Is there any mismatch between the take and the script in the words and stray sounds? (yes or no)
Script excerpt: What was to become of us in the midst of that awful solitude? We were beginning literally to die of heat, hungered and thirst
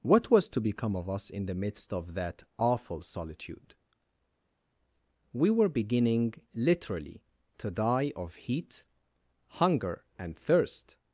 yes